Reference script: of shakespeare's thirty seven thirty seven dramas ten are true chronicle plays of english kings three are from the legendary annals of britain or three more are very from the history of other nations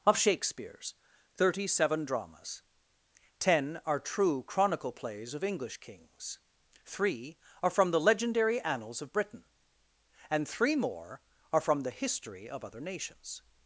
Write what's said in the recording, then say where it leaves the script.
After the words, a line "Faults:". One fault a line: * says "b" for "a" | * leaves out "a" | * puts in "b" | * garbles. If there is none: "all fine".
of shakespeare's thirty seven dramas ten are true chronicle plays of english kings three are from the legendary annals of britain and three more are from the history of other nations
Faults:
* leaves out "thirty seven"
* says "and" for "or"
* leaves out "very"